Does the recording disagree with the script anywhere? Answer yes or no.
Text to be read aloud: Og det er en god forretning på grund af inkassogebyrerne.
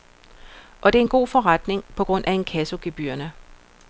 no